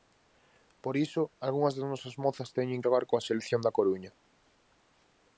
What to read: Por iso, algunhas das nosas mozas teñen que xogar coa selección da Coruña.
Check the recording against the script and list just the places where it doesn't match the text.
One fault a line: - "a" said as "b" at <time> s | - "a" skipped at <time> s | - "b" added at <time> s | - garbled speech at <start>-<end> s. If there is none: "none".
- "que" skipped at 2.8 s